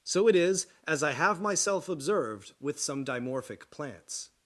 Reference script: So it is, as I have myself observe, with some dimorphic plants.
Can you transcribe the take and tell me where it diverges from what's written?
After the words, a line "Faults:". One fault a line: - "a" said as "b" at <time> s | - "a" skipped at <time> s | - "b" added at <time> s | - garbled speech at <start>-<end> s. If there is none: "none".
So it is, as I have myself observed, with some dimorphic plants.
Faults:
- "observe" said as "observed" at 1.9 s